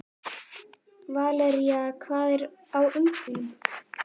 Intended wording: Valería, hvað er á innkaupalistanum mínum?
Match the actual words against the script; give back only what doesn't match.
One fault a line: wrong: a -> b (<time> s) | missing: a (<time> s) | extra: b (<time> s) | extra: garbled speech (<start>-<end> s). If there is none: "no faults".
missing: innkaupalistanum (2.8 s)